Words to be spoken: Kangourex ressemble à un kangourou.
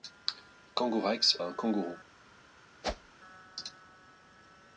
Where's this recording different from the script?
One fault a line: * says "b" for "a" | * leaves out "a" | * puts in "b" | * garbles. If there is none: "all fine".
* leaves out "ressemble"